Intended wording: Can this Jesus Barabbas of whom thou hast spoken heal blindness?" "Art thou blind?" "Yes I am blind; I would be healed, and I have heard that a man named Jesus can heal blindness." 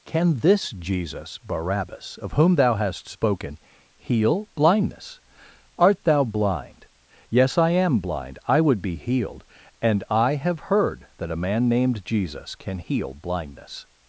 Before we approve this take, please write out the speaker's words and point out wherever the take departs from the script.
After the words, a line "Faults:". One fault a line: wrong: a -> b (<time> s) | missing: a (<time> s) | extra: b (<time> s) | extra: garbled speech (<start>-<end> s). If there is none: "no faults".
Can this Jesus Barabbas of whom thou hast spoken heal blindness?" "Art thou blind?" "Yes I am blind; I would be healed, and I have heard that a man named Jesus can heal blindness."
Faults:
no faults